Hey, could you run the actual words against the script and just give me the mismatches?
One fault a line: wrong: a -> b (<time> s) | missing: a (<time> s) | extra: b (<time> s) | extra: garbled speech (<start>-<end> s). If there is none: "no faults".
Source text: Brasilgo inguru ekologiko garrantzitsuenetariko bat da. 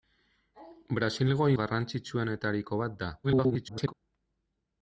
missing: inguru ekologiko (1.5 s)
extra: garbled speech (3.2-3.9 s)